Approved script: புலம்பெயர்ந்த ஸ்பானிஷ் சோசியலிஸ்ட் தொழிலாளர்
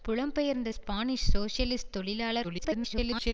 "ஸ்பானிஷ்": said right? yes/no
yes